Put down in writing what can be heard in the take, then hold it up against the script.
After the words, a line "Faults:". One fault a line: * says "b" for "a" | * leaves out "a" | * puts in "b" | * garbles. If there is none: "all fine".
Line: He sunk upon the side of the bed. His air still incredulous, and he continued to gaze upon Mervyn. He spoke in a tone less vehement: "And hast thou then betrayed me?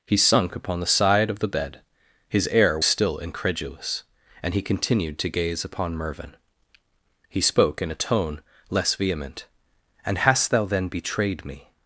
He sunk upon the side of the bed. His air still incredulous, and he continued to gaze upon Mervyn. He spoke in a tone less vehement: "And hast thou then betrayed me?
Faults:
all fine